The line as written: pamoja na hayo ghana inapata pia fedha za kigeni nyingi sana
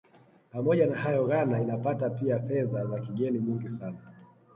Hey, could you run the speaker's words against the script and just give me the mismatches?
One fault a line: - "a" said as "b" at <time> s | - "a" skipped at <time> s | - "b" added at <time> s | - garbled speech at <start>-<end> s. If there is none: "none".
none